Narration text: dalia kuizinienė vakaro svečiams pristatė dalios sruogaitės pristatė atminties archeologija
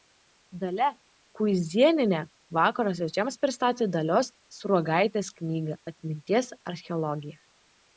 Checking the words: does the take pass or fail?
fail